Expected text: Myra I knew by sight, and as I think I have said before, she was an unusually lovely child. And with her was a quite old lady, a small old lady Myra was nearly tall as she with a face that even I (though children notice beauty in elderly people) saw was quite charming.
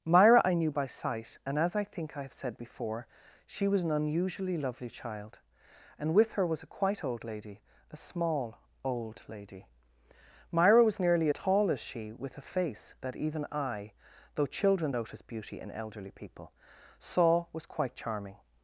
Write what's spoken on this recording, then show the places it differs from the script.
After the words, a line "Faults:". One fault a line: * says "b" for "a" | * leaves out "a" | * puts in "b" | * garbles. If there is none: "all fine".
Myra I knew by sight, and as I think I have said before, she was an unusually lovely child. And with her was a quite old lady, a small old lady Myra was nearly tall as she with a face that even I (though children notice beauty in elderly people) saw was quite charming.
Faults:
all fine